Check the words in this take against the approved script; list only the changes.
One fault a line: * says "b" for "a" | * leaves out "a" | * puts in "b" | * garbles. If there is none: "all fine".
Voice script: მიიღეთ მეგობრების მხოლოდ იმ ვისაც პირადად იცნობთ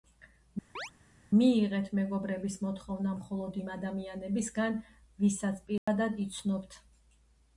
* puts in "მოთხოვნა"
* puts in "ადამიანებისგან"